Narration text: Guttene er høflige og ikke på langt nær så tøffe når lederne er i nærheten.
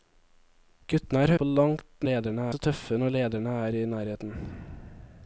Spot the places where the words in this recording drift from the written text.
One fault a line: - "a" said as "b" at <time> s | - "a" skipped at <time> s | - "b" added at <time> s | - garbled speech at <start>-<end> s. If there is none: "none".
- "høflige og ikke" skipped at 1.3 s
- "nær" said as "lederne" at 2.1 s